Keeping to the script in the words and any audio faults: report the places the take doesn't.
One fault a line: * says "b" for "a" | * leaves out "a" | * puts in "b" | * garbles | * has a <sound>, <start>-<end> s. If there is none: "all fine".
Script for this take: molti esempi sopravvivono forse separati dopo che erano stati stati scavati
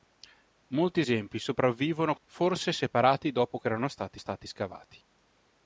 all fine